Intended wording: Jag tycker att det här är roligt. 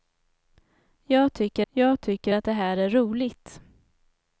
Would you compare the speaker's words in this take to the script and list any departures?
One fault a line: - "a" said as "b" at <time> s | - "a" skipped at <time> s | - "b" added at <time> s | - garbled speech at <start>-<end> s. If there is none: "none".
- "jag tycker" added at 1.7 s